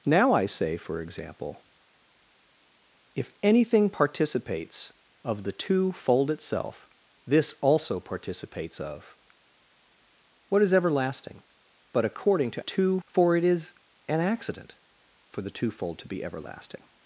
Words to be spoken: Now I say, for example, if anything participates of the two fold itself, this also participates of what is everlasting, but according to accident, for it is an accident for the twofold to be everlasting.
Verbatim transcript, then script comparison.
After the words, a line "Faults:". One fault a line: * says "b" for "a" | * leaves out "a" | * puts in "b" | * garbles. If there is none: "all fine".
Now I say, for example, if anything participates of the two fold itself, this also participates of what is everlasting, but according to two, for it is an accident for the twofold to be everlasting.
Faults:
* says "two" for "accident"